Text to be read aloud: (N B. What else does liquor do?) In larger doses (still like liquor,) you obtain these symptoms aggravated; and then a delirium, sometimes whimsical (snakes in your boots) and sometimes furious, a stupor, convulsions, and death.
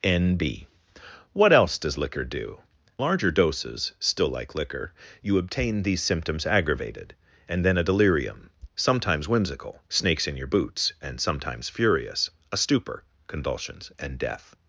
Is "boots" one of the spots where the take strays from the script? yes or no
no